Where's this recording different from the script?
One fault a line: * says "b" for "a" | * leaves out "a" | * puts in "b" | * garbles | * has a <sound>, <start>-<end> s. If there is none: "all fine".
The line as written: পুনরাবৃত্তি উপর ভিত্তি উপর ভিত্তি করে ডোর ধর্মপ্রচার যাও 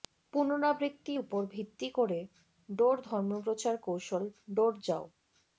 * leaves out "উপর ভিত্তি"
* puts in "কৌশল ডোর"